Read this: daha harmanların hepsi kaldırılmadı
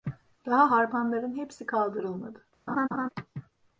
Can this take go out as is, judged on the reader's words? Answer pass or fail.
pass